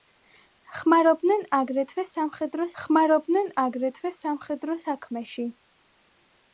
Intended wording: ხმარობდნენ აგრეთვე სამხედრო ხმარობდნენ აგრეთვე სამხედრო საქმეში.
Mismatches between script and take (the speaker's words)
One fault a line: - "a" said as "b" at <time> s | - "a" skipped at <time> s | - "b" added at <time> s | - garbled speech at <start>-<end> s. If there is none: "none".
none